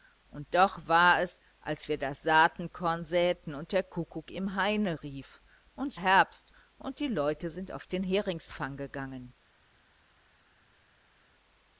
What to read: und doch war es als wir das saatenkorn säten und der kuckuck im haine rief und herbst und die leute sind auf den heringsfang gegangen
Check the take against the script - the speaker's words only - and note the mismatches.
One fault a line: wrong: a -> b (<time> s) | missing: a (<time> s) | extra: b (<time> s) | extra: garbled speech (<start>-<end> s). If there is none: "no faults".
no faults